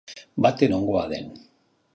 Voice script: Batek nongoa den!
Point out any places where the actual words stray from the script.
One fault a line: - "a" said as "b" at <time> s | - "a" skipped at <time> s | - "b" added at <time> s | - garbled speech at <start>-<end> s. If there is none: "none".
none